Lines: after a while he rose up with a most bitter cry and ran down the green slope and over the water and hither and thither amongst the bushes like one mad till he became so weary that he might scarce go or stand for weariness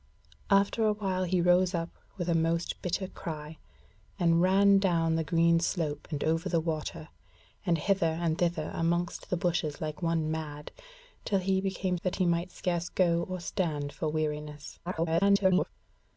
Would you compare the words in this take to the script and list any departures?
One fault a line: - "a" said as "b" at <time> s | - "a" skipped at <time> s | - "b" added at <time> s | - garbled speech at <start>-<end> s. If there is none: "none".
- "so weary" skipped at 12.0 s
- garbled speech at 14.8-15.7 s